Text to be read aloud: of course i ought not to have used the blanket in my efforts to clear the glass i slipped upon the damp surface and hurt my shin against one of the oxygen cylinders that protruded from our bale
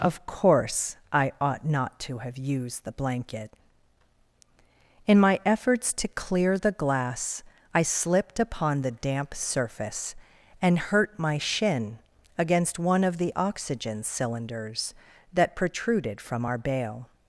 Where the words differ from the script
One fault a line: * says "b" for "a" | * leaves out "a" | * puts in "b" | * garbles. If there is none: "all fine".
all fine